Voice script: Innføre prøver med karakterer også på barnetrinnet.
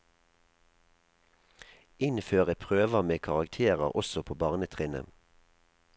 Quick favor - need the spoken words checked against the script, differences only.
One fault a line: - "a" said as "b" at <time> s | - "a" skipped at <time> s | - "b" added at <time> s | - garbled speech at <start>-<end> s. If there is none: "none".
none